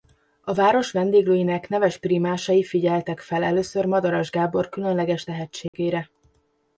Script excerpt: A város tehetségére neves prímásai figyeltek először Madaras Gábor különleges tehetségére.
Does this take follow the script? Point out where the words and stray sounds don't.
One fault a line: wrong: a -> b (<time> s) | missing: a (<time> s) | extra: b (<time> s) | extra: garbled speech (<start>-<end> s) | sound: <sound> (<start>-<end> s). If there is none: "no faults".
wrong: tehetségére -> vendéglőinek (0.9 s)
extra: fel (3.2 s)
sound: dropout (5.7-5.7 s)